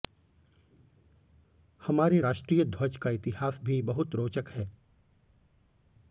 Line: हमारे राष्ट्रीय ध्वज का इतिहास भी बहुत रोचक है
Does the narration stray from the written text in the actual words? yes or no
no